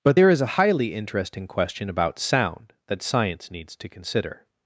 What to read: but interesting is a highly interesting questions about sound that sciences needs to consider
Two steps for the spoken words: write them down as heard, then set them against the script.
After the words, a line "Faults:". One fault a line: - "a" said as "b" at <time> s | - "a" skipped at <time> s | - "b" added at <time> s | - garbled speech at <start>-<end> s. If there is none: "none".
but there is a highly interesting question about sound that science needs to consider
Faults:
- "interesting" said as "there" at 0.1 s
- "questions" said as "question" at 1.5 s
- "sciences" said as "science" at 3.0 s